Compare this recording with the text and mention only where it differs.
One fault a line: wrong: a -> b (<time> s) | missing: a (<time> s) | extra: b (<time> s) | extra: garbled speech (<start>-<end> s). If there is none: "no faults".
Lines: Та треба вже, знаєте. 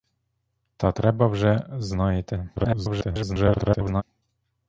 extra: garbled speech (2.6-4.0 s)